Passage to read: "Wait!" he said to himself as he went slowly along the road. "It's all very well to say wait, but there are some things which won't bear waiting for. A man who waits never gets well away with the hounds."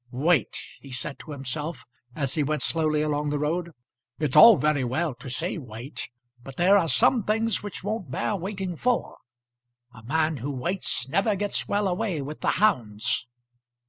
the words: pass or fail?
pass